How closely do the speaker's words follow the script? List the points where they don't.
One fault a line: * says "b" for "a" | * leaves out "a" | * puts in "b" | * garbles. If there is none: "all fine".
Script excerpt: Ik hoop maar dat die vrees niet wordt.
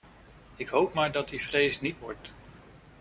all fine